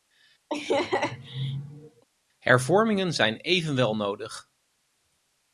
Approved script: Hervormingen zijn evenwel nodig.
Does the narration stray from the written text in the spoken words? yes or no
no